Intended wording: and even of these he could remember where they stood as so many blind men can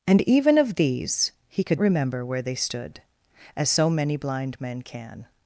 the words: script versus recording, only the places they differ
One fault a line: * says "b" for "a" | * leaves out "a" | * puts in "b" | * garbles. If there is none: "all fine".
all fine